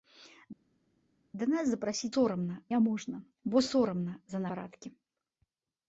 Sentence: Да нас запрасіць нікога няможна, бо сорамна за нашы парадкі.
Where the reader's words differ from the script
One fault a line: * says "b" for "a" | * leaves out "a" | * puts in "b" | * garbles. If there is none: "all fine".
* says "сорамна" for "нікога"
* leaves out "нашы"